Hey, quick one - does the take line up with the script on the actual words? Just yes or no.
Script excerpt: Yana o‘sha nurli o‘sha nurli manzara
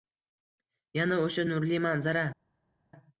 no